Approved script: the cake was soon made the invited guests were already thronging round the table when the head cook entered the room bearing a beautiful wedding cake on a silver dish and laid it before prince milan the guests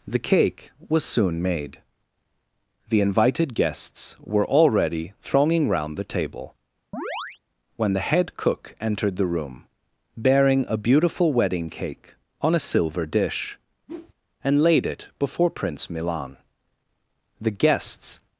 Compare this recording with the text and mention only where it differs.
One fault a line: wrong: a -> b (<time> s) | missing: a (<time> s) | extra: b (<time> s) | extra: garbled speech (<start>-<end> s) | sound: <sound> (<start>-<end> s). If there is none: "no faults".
sound: chirp (6.9-7.4 s)
sound: whoosh (13.9-14.1 s)